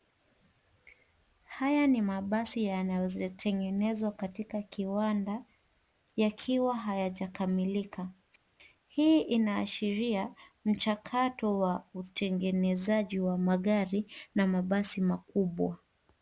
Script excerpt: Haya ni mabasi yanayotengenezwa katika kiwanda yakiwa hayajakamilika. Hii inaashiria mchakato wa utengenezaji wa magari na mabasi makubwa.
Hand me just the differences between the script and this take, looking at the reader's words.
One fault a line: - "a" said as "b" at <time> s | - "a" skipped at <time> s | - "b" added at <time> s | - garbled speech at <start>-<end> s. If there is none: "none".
none